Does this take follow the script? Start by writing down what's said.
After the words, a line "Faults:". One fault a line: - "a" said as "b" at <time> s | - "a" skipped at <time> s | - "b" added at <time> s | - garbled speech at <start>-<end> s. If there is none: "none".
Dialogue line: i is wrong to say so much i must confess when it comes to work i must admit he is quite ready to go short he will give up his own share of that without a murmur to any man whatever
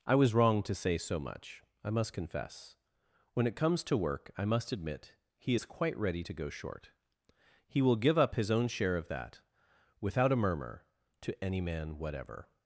i was wrong to say so much i must confess when it comes to work i must admit he is quite ready to go short he will give up his own share of that without a murmur to any man whatever
Faults:
- "is" said as "was" at 0.1 s